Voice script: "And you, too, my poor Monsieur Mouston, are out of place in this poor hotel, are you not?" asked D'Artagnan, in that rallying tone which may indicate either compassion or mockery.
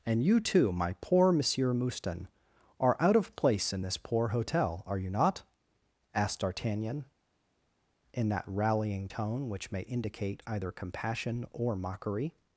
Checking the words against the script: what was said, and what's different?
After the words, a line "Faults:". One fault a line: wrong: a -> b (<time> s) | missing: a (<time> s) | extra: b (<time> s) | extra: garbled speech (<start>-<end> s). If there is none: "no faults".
"And you, too, my poor Monsieur Mouston, are out of place in this poor hotel, are you not?" asked D'Artagnan, in that rallying tone which may indicate either compassion or mockery.
Faults:
no faults